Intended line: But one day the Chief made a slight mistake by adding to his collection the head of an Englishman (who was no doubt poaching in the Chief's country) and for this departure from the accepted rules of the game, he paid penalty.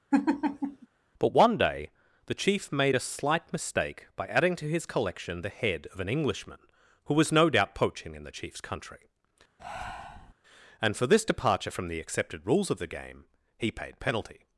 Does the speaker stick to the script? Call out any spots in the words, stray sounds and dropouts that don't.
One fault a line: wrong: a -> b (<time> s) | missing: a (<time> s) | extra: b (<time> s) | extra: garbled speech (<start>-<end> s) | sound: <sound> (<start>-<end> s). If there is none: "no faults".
sound: laugh (0.1-0.9 s)
sound: breath (9.6-10.3 s)